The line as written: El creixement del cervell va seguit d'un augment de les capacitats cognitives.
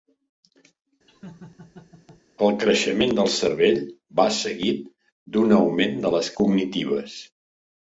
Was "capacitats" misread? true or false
true